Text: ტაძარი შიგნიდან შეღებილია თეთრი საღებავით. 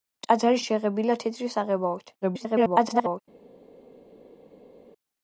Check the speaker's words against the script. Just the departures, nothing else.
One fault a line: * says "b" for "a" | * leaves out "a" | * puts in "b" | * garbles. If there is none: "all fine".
* leaves out "შიგნიდან"
* garbles